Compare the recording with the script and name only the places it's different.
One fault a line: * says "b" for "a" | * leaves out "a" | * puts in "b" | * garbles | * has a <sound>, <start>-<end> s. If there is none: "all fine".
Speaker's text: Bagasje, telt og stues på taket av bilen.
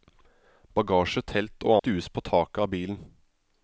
all fine